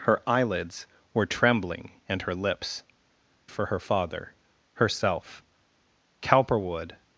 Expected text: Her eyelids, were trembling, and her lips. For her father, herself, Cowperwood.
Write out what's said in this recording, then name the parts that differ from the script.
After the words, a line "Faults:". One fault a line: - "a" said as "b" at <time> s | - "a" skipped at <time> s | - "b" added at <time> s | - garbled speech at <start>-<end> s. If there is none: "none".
Her eyelids, were trembling, and her lips. For her father, herself, Cowperwood.
Faults:
none